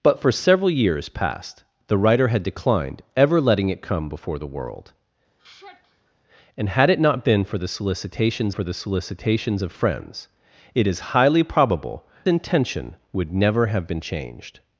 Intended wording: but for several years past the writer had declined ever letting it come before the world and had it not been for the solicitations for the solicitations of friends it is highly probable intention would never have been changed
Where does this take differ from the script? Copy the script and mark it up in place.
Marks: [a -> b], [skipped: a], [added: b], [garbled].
but for several years past the writer had declined ever letting it come before the world and had it not been for the solicitations for the solicitations of friends it is highly probable intention would never have been changed